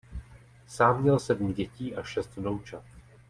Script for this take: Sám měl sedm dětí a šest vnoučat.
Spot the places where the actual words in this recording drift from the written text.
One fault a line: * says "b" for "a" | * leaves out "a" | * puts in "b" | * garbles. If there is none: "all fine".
all fine